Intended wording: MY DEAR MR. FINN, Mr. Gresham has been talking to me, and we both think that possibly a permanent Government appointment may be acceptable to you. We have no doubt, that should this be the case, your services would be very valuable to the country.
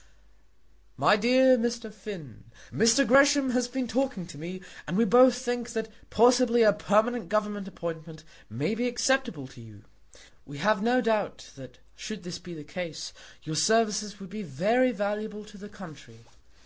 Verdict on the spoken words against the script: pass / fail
pass